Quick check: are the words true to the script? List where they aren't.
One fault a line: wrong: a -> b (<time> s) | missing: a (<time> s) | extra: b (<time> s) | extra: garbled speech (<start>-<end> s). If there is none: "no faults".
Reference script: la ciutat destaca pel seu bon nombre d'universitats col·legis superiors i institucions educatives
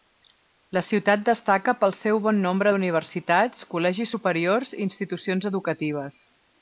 no faults